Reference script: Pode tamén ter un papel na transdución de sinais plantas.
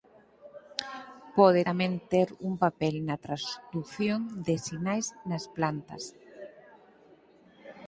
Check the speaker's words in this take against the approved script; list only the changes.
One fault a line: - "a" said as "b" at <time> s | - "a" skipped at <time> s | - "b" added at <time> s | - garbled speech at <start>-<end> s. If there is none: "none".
- "nas" added at 5.3 s